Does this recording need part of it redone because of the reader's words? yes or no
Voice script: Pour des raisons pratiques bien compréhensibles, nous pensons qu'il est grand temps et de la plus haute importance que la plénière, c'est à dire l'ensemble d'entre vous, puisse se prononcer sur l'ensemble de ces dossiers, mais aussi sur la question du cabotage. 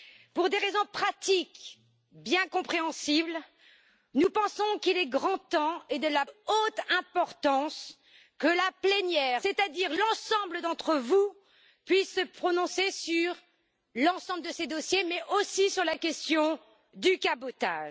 yes